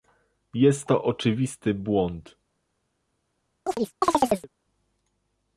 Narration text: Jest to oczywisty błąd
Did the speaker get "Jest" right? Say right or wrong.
right